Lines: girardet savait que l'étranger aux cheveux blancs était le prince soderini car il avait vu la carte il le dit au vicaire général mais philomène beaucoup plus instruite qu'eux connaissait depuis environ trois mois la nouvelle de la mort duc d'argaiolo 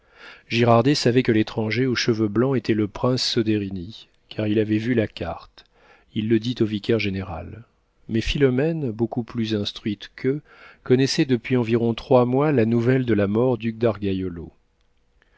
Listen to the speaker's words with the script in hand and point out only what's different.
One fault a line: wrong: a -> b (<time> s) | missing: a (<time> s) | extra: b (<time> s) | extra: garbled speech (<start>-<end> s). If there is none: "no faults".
no faults